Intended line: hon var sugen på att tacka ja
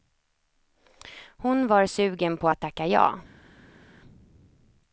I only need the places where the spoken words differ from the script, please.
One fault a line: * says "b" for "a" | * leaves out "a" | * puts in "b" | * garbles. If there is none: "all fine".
all fine